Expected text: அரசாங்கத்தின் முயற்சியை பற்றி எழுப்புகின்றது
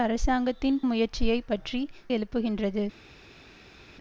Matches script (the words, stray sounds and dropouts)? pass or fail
pass